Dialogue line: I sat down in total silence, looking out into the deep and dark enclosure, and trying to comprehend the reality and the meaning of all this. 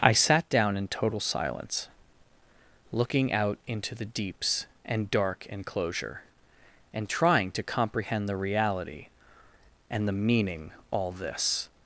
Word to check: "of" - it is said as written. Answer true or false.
false